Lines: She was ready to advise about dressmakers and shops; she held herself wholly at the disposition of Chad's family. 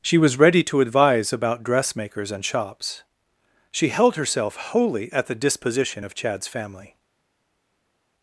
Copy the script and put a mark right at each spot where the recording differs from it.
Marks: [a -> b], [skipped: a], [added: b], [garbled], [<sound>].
She was ready to advise about dressmakers and shops; she held herself wholly at the disposition of Chad's family.